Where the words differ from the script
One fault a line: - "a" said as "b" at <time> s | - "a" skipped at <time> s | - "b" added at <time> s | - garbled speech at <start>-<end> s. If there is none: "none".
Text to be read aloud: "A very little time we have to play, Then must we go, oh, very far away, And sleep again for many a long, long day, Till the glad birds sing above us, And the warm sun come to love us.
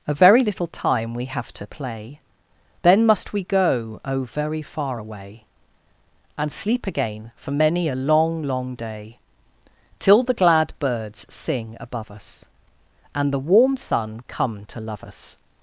none